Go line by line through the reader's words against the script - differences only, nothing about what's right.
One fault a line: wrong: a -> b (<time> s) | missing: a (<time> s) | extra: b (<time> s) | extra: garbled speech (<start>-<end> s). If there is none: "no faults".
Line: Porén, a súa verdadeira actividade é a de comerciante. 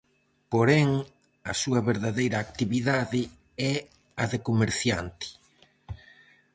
no faults